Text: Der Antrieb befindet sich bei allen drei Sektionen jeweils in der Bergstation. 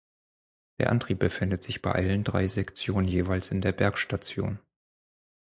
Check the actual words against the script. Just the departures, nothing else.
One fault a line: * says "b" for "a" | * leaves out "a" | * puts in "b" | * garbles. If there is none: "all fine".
all fine